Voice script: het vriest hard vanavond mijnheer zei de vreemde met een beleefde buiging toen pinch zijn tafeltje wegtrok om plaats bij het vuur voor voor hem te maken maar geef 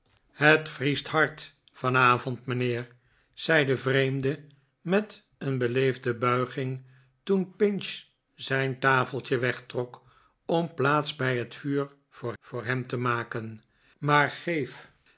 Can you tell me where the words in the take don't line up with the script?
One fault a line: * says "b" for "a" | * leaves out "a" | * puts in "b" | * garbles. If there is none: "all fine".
all fine